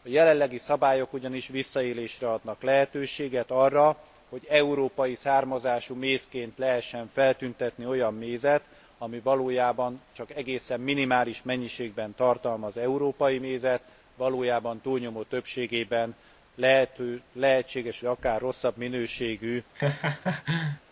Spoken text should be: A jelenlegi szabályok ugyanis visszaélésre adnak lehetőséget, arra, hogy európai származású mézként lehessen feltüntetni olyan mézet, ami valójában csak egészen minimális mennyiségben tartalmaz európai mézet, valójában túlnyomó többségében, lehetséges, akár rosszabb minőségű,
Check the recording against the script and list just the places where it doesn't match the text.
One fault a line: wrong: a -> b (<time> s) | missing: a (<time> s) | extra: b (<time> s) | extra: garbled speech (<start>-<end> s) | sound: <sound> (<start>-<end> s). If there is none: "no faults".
sound: laugh (19.7-20.8 s)